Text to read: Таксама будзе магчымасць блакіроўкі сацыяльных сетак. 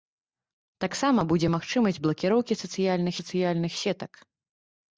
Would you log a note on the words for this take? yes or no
yes